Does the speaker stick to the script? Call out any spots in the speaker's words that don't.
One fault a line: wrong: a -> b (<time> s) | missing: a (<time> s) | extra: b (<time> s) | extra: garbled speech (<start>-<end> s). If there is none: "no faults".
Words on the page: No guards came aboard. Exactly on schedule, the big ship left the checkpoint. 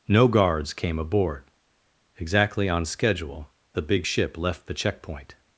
no faults